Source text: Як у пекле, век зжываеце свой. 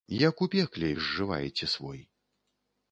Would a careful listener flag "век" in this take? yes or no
yes